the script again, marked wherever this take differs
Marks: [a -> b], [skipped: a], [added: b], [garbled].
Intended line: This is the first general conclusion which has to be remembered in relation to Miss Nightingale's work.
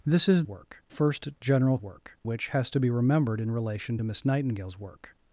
This is [the -> work] first general [conclusion -> work] which has to be remembered in relation to Miss Nightingale's work.